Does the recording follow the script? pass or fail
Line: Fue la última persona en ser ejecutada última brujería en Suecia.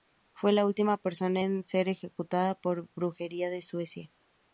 fail